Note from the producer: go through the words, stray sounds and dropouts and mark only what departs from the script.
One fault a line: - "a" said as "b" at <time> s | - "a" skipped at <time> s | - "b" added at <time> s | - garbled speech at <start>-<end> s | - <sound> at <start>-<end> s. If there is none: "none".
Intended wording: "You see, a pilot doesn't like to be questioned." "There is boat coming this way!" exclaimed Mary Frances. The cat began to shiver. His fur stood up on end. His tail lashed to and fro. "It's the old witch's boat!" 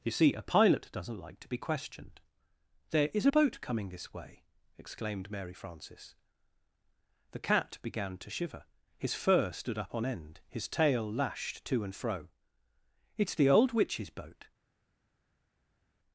none